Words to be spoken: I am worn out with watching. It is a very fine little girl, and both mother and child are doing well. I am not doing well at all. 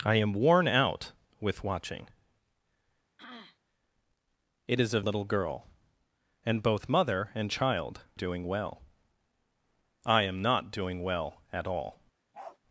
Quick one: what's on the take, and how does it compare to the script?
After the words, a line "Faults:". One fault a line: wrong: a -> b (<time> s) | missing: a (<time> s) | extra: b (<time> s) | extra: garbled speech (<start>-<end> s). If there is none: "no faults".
I am worn out with watching. It is a little girl, and both mother and child doing well. I am not doing well at all.
Faults:
missing: very fine (5.0 s)
missing: are (8.0 s)